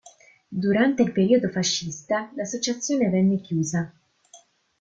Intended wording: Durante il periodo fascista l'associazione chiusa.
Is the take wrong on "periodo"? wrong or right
right